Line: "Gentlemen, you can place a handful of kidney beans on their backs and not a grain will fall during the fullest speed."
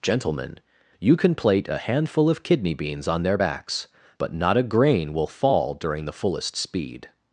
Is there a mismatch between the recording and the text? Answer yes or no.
yes